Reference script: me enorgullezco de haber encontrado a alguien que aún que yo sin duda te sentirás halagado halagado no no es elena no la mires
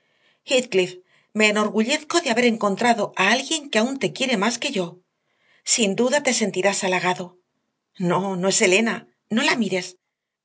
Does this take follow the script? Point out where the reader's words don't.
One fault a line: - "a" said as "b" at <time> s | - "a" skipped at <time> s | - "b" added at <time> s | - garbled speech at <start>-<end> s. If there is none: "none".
- "te quiere más" added at 4.0 s
- "halagado" skipped at 7.4 s